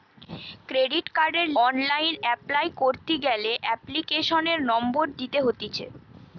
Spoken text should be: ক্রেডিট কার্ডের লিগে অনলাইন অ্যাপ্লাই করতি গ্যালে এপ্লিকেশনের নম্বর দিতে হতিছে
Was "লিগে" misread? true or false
true